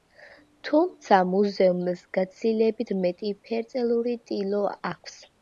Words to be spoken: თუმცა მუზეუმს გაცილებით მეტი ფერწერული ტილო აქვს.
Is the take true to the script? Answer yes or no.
yes